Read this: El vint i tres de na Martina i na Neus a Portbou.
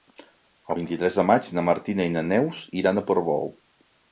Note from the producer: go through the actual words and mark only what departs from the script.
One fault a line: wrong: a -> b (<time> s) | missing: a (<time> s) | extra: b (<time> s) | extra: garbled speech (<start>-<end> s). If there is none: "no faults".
extra: maig (1.3 s)
extra: iran (2.8 s)